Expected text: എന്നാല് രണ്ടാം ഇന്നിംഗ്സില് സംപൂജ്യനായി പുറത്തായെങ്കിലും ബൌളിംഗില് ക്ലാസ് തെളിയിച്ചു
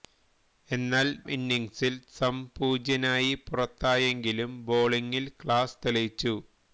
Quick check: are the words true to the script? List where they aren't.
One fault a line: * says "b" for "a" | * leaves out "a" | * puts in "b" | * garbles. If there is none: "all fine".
* leaves out "രണ്ടാം"